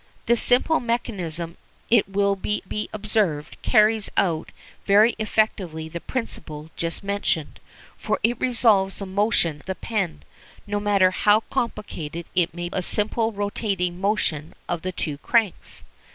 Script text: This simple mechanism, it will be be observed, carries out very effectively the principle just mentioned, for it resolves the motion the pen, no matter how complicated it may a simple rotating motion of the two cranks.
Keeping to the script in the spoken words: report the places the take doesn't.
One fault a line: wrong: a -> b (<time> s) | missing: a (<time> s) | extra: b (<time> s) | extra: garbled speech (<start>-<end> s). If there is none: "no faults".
no faults